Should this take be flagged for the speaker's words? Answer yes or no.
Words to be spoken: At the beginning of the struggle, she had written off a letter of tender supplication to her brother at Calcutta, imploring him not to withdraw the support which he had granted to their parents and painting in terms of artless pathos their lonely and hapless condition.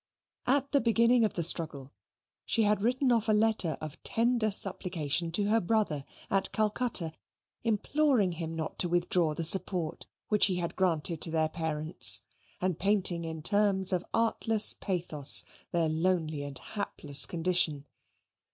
no